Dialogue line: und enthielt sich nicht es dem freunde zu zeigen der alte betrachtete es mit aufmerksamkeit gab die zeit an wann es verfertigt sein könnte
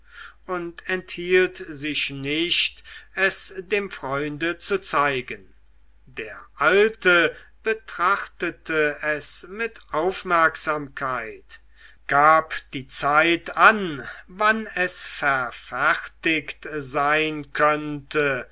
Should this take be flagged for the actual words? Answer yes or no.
no